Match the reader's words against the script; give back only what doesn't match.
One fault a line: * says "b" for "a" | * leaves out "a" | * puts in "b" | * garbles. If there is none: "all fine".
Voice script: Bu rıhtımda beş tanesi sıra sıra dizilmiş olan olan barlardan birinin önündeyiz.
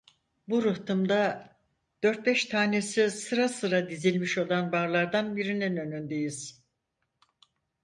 * puts in "dört"
* leaves out "olan"